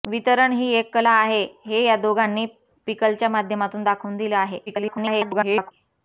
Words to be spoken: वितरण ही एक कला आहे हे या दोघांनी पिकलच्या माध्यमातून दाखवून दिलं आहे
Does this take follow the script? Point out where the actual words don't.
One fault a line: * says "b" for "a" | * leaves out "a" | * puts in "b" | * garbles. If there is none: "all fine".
* garbles